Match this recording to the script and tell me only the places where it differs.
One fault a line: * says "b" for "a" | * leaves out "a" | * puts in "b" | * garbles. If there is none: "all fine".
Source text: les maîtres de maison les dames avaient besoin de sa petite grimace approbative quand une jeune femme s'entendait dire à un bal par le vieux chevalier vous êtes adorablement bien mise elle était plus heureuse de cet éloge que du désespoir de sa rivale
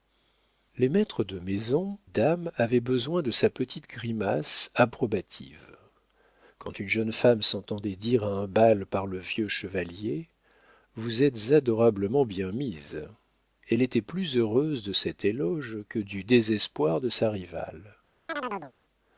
* leaves out "les"